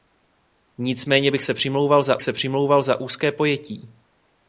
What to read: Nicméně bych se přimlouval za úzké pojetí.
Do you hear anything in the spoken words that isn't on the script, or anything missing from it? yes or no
yes